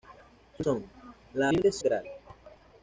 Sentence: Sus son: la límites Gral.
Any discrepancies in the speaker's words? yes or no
no